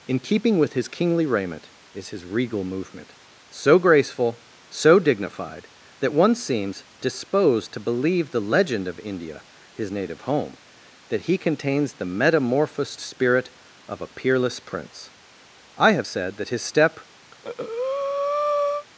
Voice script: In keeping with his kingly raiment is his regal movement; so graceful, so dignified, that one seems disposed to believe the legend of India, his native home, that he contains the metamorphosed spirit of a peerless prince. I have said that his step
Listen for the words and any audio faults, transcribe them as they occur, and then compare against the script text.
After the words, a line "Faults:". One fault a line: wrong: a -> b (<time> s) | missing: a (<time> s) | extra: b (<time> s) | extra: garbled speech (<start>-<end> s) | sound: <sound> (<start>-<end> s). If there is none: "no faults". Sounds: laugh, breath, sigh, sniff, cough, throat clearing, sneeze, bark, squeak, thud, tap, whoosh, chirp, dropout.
In keeping with his kingly raiment is his regal movement; so graceful, so dignified, that one seems disposed to believe the legend of India, his native home, that he contains the metamorphosed spirit of a peerless prince. I have said that his step
Faults:
sound: breath (17.3-18.9 s)